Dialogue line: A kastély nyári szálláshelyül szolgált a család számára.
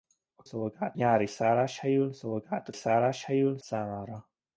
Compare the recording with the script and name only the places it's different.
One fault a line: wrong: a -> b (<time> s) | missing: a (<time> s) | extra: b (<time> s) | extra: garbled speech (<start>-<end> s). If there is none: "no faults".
wrong: kastély -> szolgált (0.4 s)
wrong: család -> szálláshelyül (2.7 s)